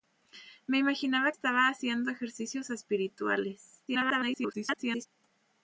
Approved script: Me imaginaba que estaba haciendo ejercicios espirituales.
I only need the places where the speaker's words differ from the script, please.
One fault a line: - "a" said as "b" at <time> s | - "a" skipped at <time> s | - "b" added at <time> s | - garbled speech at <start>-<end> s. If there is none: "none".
- "que" skipped at 1.3 s
- garbled speech at 3.9-5.1 s